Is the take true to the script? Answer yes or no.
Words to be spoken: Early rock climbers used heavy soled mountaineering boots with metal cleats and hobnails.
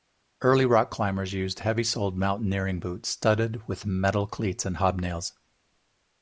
no